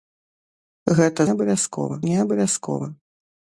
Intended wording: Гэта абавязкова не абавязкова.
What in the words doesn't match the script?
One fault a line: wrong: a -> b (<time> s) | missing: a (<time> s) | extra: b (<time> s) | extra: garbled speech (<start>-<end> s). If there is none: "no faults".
no faults